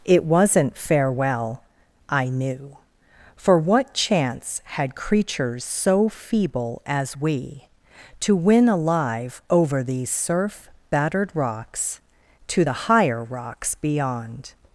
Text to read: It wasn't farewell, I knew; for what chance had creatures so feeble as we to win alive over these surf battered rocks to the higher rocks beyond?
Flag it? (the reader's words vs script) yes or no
no